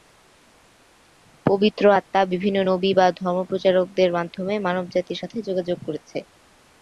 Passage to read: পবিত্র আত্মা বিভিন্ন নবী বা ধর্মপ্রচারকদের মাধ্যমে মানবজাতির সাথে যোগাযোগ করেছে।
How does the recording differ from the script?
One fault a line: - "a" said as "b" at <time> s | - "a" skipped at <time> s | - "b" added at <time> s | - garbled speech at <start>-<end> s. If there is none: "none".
none